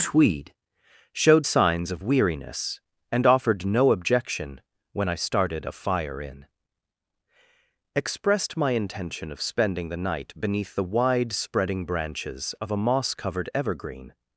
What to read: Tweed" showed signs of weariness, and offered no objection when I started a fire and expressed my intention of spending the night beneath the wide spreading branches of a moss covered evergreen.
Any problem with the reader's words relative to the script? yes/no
yes